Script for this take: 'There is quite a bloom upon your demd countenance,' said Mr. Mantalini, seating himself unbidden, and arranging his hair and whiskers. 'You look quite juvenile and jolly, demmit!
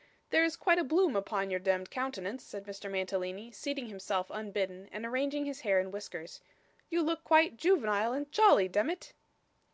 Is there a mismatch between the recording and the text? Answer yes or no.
no